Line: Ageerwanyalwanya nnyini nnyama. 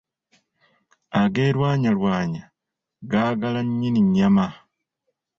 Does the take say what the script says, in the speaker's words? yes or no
no